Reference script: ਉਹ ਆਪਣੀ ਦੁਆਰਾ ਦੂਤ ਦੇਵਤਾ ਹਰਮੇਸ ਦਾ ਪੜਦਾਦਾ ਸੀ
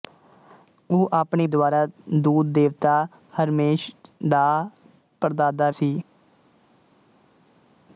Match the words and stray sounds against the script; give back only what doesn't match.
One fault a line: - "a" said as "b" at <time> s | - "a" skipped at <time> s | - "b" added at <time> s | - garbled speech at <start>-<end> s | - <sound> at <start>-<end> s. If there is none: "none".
none